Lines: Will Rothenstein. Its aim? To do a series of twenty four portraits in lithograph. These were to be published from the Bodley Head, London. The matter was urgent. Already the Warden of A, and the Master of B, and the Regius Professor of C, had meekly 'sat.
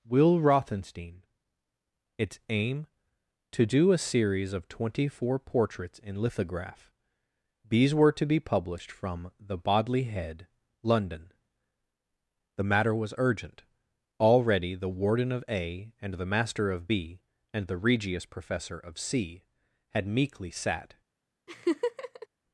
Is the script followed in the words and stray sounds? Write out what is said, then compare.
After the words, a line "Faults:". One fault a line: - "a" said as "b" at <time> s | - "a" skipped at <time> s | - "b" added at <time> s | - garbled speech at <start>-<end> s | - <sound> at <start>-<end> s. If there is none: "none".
Will Rothenstein. Its aim? To do a series of twenty four portraits in lithograph. These were to be published from the Bodley Head, London. The matter was urgent. Already the Warden of A, and the Master of B, and the Regius Professor of C, had meekly 'sat.
Faults:
- laugh at 21.5-22.3 s